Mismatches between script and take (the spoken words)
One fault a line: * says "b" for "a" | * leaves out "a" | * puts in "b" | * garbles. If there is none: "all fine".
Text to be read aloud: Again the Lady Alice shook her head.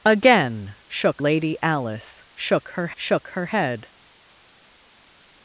* says "shook" for "the"
* puts in "shook her"